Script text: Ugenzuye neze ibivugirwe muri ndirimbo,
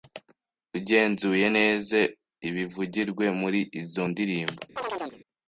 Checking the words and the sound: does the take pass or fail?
fail